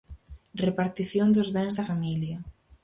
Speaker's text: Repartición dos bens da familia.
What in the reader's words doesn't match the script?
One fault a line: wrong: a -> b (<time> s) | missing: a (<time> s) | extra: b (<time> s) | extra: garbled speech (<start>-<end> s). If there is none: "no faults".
no faults